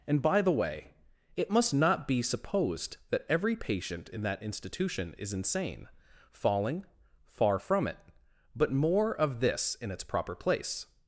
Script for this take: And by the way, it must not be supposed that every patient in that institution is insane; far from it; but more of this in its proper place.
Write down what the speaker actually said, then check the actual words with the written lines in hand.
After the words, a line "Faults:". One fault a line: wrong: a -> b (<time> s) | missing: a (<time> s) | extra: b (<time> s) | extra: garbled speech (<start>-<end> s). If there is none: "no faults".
And by the way, it must not be supposed that every patient in that institution is insane; falling far from it; but more of this in its proper place.
Faults:
extra: falling (6.3 s)